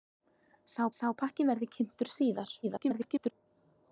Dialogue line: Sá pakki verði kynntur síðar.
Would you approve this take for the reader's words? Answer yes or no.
no